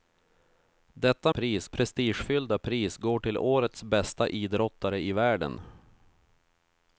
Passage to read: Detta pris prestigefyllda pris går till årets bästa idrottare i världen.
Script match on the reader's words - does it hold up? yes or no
yes